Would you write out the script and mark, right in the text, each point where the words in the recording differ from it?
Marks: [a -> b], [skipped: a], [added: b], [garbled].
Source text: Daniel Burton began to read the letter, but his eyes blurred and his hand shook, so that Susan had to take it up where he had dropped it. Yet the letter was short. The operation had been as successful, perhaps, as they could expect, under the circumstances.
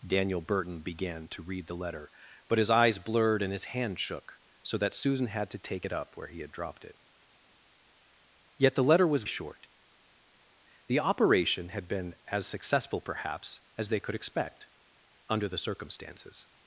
Daniel Burton began to read the letter, but his eyes blurred and his hand shook, so that Susan had to take it up where he had dropped it. Yet the letter was short. The operation had been as successful, perhaps, as they could expect, under the circumstances.